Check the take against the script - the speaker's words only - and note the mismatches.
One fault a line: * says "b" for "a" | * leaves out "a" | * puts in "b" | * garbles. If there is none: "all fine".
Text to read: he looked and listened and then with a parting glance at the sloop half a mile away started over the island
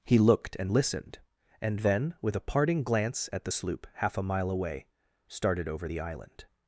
all fine